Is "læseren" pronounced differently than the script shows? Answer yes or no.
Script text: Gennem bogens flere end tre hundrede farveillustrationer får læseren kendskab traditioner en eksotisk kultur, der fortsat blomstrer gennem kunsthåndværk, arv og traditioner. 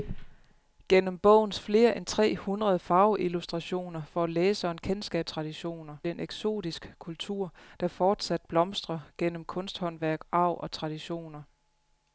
no